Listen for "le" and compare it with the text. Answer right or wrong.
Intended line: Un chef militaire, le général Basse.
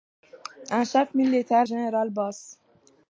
wrong